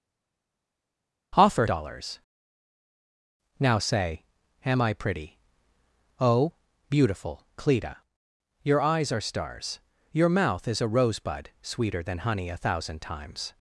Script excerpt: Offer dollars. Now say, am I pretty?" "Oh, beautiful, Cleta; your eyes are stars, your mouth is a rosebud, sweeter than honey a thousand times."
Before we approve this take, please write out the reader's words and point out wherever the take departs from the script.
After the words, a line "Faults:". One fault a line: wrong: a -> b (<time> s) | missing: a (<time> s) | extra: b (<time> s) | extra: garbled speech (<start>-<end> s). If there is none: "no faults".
Offer dollars. Now say, am I pretty?" "Oh, beautiful, Cleta; your eyes are stars, your mouth is a rosebud, sweeter than honey a thousand times."
Faults:
no faults